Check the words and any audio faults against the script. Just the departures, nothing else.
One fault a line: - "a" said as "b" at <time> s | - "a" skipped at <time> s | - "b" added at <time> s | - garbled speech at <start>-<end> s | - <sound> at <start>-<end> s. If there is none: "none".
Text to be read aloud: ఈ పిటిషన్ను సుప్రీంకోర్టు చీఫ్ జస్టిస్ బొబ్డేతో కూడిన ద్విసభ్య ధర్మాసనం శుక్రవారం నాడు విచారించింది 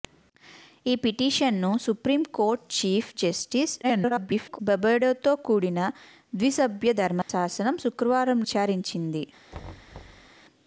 - garbled speech at 3.8-4.6 s
- dropout at 7.2-7.3 s
- "నాడు" skipped at 8.4 s
- thud at 9.5-10.3 s